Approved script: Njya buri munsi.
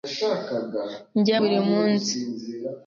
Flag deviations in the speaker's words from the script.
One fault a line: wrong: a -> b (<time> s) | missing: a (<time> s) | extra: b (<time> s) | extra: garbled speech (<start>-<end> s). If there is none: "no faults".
no faults